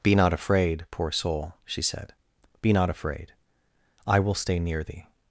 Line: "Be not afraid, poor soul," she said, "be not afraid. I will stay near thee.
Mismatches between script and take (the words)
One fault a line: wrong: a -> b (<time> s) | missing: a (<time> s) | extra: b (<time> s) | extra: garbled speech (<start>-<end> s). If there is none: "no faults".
no faults